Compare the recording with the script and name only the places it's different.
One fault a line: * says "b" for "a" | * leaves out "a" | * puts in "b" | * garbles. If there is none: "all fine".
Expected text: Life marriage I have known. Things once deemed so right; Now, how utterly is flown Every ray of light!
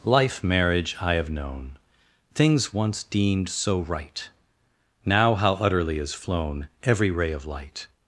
all fine